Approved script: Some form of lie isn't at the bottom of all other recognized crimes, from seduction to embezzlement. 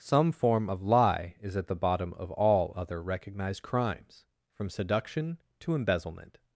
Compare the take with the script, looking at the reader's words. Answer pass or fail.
fail